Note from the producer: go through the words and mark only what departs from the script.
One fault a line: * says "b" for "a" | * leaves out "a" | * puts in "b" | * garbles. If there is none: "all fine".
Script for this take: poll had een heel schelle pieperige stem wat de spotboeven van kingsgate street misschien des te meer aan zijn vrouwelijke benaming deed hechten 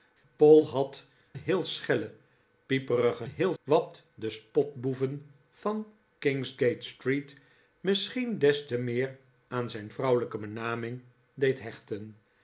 * leaves out "een"
* says "heel" for "stem"